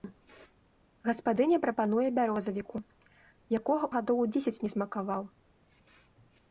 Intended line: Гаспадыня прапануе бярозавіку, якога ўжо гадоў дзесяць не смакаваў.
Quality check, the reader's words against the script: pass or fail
fail